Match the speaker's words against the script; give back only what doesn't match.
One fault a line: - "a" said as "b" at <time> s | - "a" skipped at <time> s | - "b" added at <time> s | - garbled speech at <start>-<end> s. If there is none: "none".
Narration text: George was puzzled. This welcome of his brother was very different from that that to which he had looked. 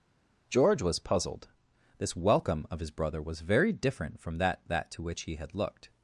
none